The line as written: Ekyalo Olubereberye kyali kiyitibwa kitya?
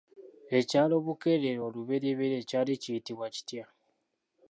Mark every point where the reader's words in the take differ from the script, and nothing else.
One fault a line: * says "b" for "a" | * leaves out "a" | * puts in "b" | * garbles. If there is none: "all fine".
* puts in "Bukeerere"